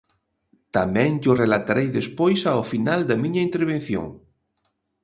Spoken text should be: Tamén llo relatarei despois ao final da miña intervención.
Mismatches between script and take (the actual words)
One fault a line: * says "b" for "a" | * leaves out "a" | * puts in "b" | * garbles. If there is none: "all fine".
all fine